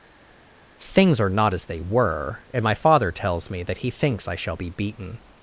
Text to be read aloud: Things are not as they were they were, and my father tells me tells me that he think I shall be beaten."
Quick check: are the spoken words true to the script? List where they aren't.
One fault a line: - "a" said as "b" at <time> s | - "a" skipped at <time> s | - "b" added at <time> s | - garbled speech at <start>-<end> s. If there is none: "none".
- "they were" skipped at 2.4 s
- "tells me" skipped at 3.6 s
- "think" said as "thinks" at 3.9 s